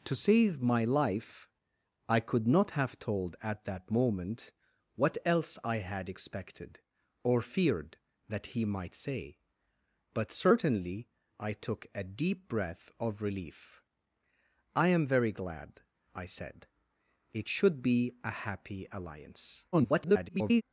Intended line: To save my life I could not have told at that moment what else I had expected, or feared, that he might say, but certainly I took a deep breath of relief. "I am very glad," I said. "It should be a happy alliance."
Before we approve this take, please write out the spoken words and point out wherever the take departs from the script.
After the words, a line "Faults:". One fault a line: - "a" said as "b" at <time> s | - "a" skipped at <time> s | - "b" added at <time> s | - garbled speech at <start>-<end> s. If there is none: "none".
To save my life I could not have told at that moment what else I had expected, or feared, that he might say, but certainly I took a deep breath of relief. "I am very glad," I said. "It should be a happy alliance." [garbled]
Faults:
- garbled speech at 19.7-20.6 s